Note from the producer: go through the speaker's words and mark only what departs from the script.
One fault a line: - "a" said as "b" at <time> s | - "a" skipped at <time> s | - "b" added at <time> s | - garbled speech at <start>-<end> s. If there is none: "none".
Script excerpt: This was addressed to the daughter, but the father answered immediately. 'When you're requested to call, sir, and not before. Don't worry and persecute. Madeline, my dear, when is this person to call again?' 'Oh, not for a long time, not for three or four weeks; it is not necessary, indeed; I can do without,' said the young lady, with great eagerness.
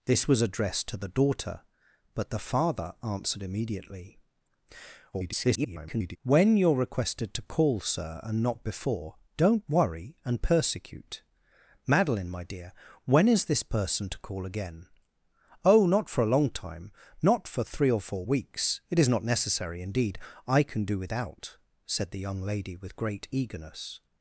- garbled speech at 5.1-6.2 s